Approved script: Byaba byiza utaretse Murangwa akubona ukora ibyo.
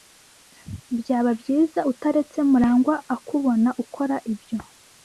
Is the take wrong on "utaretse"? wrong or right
right